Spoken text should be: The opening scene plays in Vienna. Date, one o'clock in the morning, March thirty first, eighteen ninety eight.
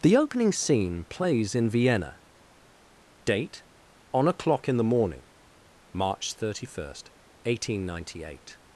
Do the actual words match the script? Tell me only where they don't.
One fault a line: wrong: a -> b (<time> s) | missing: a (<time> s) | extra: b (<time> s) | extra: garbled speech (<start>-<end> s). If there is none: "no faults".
wrong: one -> on (4.1 s)